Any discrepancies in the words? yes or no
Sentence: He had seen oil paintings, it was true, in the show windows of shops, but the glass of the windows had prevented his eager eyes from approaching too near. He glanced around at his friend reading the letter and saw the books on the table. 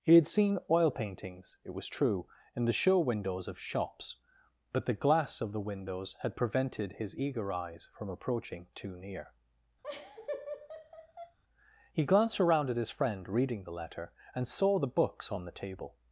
no